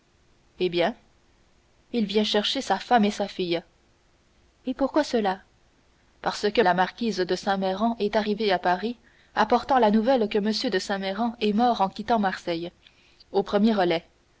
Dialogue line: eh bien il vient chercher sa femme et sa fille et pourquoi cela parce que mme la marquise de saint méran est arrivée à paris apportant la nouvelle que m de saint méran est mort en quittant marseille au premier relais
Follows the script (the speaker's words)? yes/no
no